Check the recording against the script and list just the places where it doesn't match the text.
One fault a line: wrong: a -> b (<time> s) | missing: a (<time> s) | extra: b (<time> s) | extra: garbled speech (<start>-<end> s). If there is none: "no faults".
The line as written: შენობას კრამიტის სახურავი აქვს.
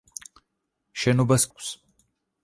missing: კრამიტის სახურავი (1.4 s)